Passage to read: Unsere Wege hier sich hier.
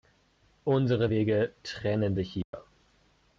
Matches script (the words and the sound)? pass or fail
fail